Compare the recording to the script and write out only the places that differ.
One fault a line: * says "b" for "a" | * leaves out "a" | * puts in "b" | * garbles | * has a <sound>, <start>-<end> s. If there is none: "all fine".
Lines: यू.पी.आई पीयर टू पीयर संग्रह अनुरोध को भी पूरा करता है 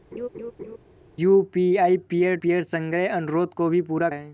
* has a laugh, 0.1-0.8 s
* leaves out "टू"
* leaves out "करता"